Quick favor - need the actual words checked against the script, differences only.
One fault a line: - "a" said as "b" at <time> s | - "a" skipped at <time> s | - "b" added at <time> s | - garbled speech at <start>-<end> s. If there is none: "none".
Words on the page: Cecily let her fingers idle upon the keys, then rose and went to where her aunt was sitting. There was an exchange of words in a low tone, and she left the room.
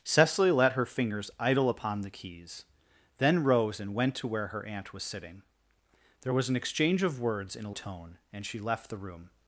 - "low" skipped at 7.7 s